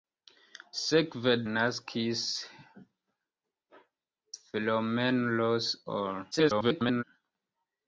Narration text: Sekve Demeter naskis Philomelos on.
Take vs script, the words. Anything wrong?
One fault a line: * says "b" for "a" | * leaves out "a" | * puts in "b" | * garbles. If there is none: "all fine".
* leaves out "Demeter"
* garbles